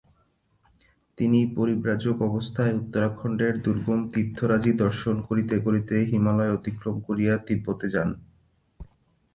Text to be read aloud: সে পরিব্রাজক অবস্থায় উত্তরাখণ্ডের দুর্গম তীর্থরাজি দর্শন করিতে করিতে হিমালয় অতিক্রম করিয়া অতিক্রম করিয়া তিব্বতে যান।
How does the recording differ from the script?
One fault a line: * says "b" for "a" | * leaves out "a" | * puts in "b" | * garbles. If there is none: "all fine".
* says "তিনি" for "সে"
* leaves out "অতিক্রম করিয়া"